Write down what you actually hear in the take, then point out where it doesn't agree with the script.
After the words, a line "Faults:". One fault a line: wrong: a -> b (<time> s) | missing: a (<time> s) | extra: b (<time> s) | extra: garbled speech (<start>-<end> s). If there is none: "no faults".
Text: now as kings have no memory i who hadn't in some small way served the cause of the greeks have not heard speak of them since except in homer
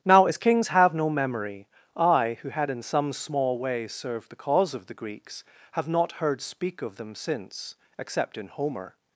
now as kings have no memory i who had in some small way served the cause of the greeks have not heard speak of them since except in homer
Faults:
wrong: hadn't -> had (2.5 s)